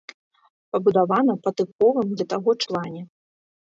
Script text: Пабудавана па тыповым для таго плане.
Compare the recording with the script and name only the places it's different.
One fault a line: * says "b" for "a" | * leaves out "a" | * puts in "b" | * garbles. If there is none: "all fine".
all fine